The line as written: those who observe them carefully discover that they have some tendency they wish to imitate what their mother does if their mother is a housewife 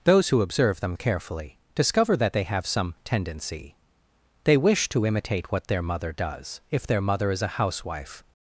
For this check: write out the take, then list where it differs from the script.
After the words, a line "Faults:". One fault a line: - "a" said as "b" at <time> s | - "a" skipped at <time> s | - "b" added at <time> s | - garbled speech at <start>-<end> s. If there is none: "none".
those who observe them carefully discover that they have some tendency they wish to imitate what their mother does if their mother is a housewife
Faults:
none